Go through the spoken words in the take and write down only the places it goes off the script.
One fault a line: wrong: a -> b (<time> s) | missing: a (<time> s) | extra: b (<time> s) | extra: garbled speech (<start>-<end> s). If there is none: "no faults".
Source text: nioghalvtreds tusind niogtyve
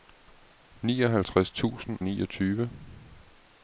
no faults